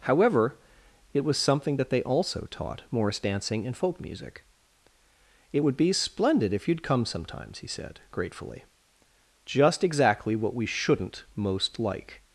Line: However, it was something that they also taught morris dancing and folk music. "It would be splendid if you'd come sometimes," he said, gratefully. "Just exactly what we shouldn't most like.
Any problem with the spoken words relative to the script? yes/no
no